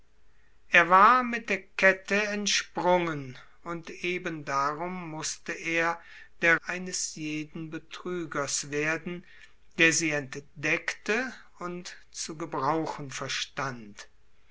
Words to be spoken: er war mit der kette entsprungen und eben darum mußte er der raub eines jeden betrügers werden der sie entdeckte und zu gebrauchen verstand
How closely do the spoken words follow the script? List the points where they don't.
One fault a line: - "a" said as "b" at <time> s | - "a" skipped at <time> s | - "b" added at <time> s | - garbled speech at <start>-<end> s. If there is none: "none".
- "raub" skipped at 6.6 s